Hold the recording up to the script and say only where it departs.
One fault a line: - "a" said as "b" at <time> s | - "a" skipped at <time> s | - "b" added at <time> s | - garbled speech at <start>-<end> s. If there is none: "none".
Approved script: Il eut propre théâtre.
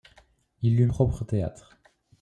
none